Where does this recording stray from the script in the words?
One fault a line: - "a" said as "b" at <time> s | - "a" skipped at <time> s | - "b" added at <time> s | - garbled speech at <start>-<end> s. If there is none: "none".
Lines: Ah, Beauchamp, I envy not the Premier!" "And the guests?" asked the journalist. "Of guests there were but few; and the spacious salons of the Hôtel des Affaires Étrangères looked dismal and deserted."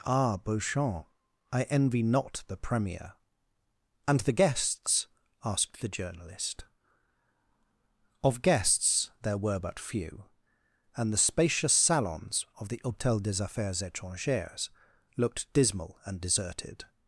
none